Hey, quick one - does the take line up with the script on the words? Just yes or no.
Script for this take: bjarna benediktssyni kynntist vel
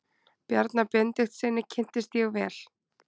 no